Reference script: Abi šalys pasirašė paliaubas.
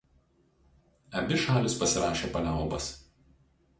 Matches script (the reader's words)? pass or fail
pass